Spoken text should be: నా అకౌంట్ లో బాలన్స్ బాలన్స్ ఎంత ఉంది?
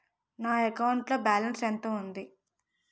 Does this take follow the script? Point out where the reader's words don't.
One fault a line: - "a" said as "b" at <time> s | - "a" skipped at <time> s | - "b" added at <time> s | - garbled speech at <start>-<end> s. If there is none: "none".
- "బాలన్స్" skipped at 1.6 s